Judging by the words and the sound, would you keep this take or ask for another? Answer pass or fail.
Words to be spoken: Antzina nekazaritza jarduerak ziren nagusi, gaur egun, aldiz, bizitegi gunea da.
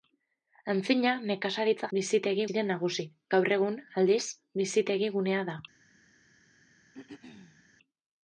fail